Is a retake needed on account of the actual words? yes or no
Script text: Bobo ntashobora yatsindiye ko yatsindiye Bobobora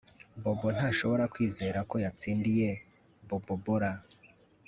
yes